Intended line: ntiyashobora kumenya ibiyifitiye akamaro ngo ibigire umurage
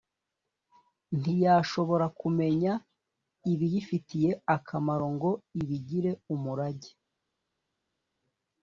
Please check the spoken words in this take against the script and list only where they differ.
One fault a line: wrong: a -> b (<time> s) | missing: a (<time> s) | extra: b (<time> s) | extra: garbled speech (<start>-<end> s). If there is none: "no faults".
no faults